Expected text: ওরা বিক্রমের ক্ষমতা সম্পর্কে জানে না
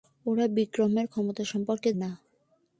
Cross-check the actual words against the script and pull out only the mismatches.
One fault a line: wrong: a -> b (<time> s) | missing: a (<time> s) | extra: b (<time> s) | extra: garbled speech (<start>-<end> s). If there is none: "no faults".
missing: জানে (1.9 s)